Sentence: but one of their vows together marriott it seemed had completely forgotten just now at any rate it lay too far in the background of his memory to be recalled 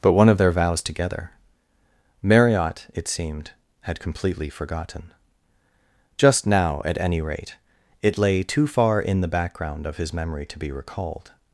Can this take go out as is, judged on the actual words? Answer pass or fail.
pass